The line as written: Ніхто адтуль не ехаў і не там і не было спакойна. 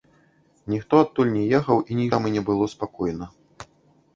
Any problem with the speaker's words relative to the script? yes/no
no